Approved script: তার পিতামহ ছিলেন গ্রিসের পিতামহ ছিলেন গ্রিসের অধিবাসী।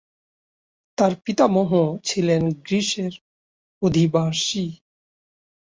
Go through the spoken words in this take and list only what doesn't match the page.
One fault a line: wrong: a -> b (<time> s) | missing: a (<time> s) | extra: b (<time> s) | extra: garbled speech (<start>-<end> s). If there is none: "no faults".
missing: পিতামহ ছিলেন গ্রিসের (3.1 s)